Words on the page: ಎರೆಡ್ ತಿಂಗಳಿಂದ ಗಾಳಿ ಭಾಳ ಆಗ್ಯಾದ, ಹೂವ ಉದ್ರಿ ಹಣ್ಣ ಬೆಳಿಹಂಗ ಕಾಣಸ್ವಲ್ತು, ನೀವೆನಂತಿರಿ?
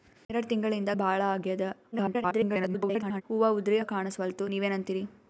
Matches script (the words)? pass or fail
fail